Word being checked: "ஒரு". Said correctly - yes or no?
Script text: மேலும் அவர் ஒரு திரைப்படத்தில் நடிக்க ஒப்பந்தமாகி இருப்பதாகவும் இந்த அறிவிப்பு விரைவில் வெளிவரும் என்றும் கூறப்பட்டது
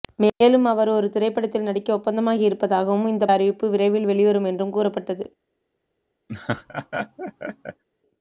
yes